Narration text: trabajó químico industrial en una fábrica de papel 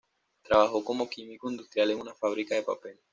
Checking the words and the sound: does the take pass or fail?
fail